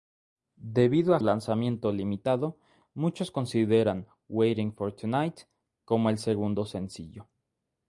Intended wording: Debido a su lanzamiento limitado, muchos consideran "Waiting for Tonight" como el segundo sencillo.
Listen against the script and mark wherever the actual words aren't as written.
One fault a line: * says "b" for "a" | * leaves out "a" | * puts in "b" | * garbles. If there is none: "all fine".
* leaves out "su"